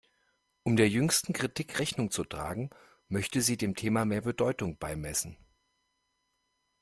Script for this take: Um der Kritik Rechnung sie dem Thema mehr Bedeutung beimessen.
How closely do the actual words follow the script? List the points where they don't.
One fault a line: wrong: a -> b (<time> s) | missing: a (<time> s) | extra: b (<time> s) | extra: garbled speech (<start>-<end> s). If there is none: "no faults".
extra: jüngsten (0.9 s)
extra: zu tragen möchte (2.1 s)